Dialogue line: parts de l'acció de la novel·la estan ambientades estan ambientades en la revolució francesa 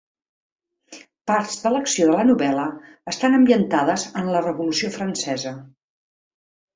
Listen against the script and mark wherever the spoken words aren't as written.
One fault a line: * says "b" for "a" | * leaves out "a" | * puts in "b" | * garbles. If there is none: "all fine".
* leaves out "estan ambientades"